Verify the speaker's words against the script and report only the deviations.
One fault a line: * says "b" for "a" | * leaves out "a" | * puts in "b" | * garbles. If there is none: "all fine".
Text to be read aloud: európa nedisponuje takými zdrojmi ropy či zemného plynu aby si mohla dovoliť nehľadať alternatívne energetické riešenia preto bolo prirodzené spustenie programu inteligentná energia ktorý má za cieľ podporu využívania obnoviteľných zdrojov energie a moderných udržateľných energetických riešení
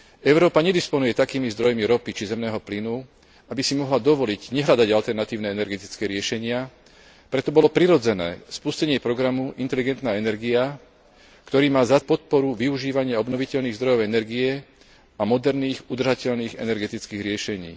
* leaves out "cieľ"